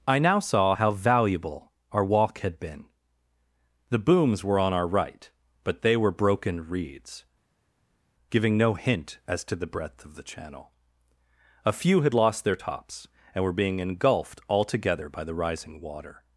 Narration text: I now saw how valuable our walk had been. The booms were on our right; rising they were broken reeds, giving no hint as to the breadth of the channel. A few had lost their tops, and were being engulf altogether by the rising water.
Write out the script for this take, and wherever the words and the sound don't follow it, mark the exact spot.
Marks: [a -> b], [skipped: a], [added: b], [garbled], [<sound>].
I now saw how valuable our walk had been. The booms were on our right; [rising -> but] they were broken reeds, giving no hint as to the breadth of the channel. A few had lost their tops, and were being [engulf -> engulfed] altogether by the rising water.